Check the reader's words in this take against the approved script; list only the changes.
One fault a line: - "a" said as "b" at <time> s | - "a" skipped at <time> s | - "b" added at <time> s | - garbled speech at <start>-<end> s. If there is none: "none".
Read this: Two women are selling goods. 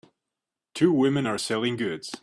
none